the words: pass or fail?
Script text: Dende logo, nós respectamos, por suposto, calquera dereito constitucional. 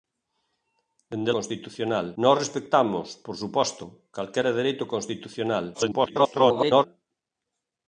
fail